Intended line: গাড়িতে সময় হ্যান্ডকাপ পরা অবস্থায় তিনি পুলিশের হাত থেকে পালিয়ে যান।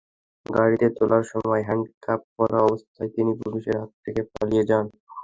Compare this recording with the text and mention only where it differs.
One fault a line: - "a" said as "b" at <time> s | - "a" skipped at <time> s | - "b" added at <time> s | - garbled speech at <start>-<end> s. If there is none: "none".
- "তোলার" added at 1.0 s